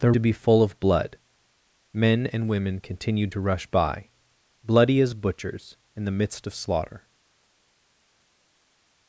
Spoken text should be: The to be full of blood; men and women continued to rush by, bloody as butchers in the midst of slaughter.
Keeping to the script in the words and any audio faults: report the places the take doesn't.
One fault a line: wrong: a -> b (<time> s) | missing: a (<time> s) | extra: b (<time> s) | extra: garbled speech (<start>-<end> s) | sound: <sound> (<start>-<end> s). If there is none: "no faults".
no faults